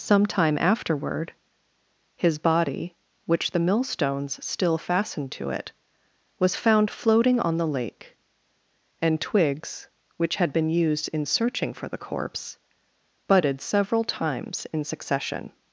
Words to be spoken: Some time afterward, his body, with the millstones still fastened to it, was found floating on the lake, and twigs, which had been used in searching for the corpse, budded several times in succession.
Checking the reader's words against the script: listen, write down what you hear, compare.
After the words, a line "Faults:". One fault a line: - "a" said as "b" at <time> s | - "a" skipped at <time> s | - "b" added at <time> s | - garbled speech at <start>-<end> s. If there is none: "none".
Some time afterward, his body, which the millstones still fastened to it, was found floating on the lake, and twigs, which had been used in searching for the corpse, budded several times in succession.
Faults:
- "with" said as "which" at 3.2 s